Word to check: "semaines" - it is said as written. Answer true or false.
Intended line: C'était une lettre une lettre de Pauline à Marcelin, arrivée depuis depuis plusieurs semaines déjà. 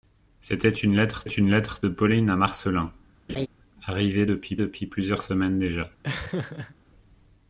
true